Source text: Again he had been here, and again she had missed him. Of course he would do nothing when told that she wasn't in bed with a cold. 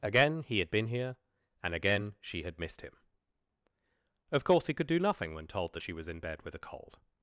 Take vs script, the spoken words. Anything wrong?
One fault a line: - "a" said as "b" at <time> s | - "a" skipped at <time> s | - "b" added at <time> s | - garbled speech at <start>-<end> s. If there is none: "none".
- "would" said as "could" at 4.7 s
- "wasn't" said as "was" at 5.9 s